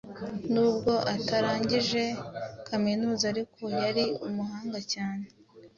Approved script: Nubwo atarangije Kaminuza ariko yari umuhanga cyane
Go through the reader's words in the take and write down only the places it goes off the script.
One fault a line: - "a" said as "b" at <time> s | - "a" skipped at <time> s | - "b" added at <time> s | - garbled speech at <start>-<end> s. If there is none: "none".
none